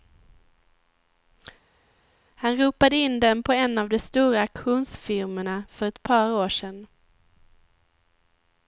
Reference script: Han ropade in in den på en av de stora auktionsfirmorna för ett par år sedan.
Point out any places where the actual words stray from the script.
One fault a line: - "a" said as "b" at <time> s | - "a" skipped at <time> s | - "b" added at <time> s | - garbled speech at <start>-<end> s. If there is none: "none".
- "in" skipped at 3.2 s